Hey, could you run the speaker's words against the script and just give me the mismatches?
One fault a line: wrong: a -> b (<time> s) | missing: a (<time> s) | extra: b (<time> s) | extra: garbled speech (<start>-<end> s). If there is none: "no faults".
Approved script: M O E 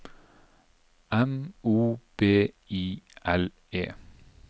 extra: B I L (2.2 s)